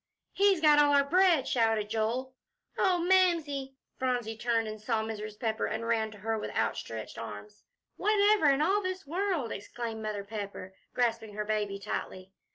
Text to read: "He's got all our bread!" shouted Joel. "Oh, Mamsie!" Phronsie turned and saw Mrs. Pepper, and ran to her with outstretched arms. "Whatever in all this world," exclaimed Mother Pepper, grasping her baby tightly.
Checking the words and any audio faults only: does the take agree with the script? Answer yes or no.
yes